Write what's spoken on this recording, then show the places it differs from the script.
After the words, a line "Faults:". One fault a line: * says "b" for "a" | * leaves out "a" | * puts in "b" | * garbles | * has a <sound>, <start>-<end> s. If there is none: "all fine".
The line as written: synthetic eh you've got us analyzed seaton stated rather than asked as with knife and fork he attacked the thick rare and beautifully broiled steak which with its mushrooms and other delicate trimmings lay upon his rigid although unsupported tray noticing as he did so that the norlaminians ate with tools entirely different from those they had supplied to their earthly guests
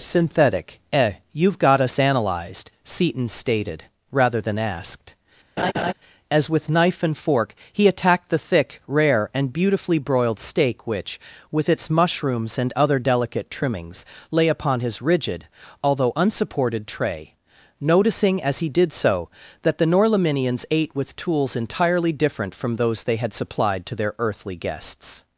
synthetic eh you've got us analyzed seaton stated rather than asked as with knife and fork he attacked the thick rare and beautifully broiled steak which with its mushrooms and other delicate trimmings lay upon his rigid although unsupported tray noticing as he did so that the norlaminians ate with tools entirely different from those they had supplied to their earthly guests
Faults:
* has a laugh, 5.6-5.9 s